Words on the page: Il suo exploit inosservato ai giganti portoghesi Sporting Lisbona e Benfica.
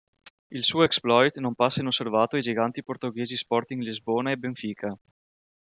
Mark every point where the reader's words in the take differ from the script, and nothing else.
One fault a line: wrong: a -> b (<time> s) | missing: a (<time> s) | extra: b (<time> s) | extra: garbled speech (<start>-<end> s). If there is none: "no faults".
extra: non passa (1.4 s)